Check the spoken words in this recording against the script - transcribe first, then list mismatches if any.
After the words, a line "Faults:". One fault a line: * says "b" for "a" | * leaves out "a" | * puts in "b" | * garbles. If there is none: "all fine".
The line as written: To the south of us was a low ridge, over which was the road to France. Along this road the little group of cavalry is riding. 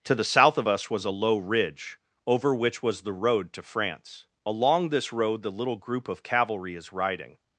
To the south of us was a low ridge, over which was the road to France. Along this road the little group of cavalry is riding.
Faults:
all fine